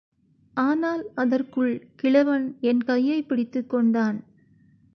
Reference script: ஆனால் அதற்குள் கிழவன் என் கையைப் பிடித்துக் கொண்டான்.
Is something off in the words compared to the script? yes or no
no